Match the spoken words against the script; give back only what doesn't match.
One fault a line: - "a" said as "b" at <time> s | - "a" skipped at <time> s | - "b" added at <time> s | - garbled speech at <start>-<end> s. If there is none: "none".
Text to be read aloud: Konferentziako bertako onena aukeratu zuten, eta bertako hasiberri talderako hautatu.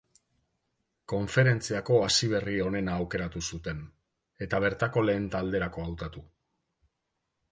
- "bertako" said as "hasiberri" at 2.0 s
- "hasiberri" said as "lehen" at 5.1 s